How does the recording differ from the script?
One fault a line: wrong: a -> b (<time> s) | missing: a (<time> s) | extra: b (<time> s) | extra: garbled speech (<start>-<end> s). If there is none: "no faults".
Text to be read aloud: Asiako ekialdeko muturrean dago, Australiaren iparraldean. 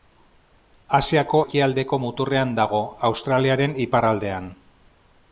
no faults